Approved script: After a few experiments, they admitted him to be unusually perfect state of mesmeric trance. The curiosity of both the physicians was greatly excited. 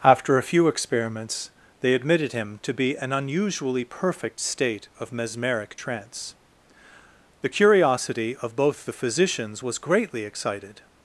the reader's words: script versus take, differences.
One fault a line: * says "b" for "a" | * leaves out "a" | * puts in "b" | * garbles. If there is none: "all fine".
* puts in "an"